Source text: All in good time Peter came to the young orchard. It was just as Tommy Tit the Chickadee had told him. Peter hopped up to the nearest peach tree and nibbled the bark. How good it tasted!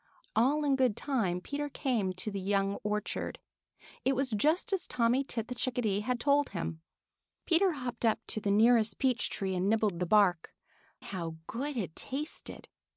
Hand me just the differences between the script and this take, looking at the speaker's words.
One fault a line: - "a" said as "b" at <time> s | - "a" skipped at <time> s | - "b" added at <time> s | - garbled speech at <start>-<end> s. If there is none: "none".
none